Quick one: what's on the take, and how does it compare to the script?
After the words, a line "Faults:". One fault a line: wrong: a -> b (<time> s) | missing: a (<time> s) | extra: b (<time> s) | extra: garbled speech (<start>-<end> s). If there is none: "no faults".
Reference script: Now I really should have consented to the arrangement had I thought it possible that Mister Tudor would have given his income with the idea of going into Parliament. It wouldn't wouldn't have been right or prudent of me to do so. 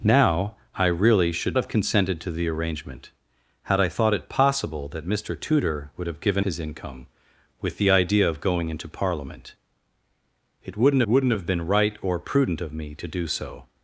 Now I really should have consented to the arrangement had I thought it possible that Mister Tudor would have given his income with the idea of going into Parliament. It wouldn't wouldn't have been right or prudent of me to do so.
Faults:
no faults